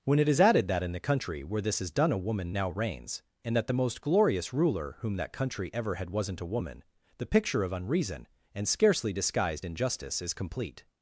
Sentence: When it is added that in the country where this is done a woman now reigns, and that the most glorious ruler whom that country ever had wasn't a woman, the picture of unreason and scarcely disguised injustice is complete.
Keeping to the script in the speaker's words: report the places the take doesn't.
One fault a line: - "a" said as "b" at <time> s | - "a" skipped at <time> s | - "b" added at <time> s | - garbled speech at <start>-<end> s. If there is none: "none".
none